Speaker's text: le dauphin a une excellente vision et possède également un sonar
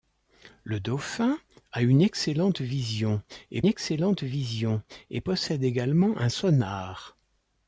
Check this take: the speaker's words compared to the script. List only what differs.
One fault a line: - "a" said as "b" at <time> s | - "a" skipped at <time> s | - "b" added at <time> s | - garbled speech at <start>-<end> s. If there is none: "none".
- "excellente vision et" added at 3.7 s